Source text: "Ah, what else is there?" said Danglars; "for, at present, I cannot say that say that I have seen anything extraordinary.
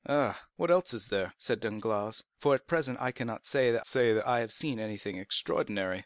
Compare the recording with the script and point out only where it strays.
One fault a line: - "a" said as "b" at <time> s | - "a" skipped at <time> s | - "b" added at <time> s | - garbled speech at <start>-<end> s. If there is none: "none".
none